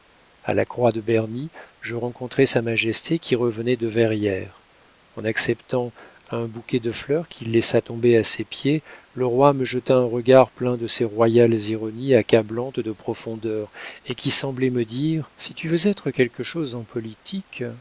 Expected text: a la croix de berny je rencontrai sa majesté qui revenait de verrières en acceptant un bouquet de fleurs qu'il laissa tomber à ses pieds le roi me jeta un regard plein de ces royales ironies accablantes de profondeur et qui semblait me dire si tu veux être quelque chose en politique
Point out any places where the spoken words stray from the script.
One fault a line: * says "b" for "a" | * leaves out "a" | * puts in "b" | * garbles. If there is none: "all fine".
all fine